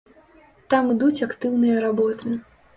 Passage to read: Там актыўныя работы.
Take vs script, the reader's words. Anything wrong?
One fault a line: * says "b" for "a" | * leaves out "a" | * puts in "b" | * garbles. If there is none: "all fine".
* puts in "ідуць"